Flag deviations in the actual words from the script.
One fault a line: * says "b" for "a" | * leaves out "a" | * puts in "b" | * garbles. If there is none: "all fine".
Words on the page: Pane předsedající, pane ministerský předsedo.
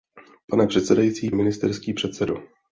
* leaves out "pane"